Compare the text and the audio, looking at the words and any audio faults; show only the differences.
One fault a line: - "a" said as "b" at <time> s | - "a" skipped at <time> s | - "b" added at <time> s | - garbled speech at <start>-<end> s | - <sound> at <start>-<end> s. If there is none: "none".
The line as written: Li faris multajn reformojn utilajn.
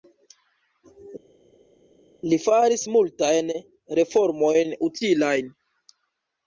none